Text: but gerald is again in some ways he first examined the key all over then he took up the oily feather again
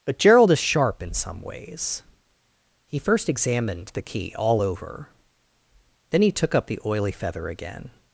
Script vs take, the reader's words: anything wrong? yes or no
yes